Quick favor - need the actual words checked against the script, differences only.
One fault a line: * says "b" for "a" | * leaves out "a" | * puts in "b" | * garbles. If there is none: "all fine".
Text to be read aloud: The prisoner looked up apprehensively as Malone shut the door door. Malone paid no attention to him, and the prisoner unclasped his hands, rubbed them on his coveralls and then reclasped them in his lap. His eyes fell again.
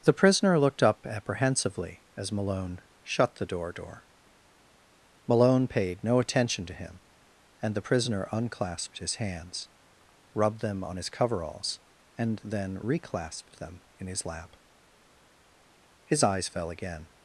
all fine